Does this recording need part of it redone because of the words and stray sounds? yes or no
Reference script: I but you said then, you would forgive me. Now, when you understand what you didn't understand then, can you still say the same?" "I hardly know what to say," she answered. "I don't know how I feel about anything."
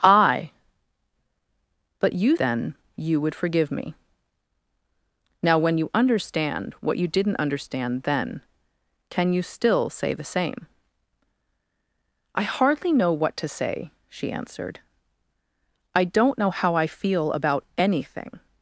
yes